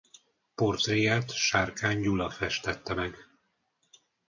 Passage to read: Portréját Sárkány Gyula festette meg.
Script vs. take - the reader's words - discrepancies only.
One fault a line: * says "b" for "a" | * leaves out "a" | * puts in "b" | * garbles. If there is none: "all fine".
all fine